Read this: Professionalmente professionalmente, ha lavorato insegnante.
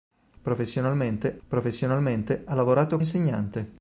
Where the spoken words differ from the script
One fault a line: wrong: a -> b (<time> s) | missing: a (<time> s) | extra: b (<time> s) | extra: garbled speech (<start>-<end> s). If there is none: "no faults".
no faults